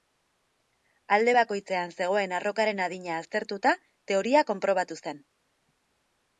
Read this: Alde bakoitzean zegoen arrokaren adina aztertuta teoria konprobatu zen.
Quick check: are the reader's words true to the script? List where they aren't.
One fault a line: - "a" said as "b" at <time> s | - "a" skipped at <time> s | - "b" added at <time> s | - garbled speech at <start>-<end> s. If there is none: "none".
none